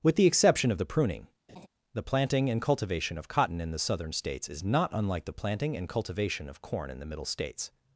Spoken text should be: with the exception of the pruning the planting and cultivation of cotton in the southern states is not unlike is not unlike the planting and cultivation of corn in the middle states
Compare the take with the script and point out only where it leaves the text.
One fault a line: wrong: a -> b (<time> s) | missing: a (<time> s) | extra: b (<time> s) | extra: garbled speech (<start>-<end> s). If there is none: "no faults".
missing: is not unlike (5.3 s)